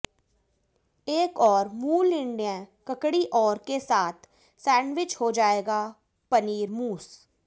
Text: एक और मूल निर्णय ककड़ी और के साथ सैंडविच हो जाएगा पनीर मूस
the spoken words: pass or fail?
pass